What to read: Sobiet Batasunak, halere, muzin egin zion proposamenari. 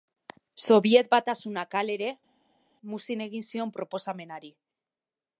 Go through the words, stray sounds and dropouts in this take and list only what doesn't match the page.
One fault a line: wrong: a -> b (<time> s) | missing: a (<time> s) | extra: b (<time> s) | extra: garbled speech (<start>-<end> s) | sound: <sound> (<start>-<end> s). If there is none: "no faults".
no faults